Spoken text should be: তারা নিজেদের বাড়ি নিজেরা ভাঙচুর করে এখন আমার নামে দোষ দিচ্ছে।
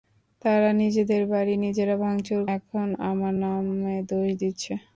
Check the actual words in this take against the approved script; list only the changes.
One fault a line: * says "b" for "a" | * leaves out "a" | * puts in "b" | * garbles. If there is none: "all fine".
* leaves out "করে"